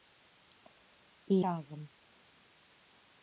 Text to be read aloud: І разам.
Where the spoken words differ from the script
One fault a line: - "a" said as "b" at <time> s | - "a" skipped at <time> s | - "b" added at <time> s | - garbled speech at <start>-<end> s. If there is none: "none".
none